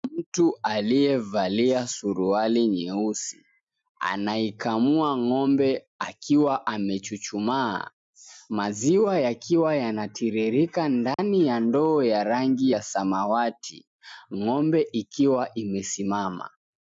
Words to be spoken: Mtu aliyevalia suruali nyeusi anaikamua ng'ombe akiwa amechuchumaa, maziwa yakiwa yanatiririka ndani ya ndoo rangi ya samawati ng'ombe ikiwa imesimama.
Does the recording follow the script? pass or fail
fail